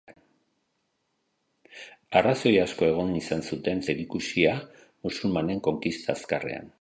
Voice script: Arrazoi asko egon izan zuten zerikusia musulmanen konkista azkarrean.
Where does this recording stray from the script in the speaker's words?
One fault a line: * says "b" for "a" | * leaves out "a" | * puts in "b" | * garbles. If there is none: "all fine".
all fine